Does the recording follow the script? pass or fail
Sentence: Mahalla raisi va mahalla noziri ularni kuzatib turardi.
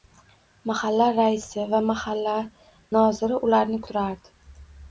fail